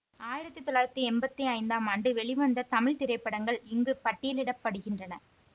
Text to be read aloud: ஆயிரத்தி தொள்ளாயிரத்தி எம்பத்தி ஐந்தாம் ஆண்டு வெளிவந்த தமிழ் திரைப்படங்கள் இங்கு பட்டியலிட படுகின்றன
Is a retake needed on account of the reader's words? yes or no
no